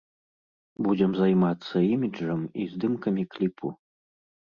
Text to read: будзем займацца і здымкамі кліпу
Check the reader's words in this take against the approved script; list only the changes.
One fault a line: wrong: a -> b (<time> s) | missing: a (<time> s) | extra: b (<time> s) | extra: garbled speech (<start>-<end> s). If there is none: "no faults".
extra: іміджам (1.9 s)